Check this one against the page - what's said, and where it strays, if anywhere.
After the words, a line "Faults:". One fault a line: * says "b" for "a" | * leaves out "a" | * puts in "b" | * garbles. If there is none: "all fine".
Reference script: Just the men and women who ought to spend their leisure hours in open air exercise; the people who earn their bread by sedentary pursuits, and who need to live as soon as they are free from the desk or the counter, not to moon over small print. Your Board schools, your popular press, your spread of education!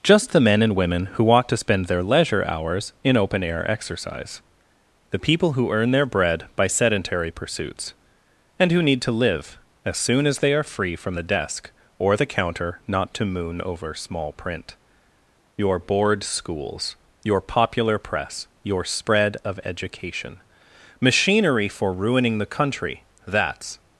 Just the men and women who ought to spend their leisure hours in open air exercise; the people who earn their bread by sedentary pursuits, and who need to live as soon as they are free from the desk or the counter, not to moon over small print. Your Board schools, your popular press, your spread of education! Machinery for ruining the country, that's
Faults:
* puts in "Machinery for ruining the country that's"